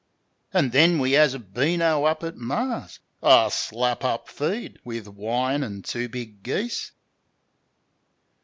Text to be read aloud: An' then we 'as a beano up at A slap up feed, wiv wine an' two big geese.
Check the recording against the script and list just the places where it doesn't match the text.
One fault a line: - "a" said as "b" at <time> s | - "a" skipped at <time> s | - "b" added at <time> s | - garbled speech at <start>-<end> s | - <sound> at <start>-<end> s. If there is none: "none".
- "Mar's" added at 2.4 s